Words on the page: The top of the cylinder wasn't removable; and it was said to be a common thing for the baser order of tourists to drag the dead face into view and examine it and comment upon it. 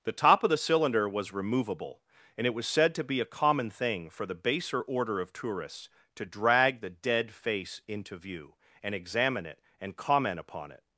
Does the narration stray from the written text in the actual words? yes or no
yes